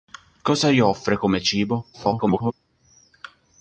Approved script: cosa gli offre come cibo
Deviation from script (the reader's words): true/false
true